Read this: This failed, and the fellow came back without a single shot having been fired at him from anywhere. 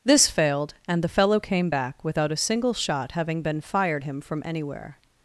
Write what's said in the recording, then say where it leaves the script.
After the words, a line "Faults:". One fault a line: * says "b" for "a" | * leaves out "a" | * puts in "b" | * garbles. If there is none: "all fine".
This failed, and the fellow came back without a single shot having been fired him from anywhere.
Faults:
* leaves out "at"